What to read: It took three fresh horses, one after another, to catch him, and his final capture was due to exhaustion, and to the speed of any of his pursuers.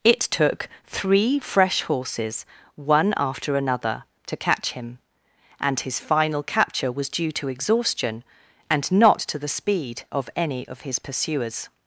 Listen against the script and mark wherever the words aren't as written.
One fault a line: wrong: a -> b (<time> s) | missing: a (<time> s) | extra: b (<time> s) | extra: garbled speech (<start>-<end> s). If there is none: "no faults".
extra: not (8.9 s)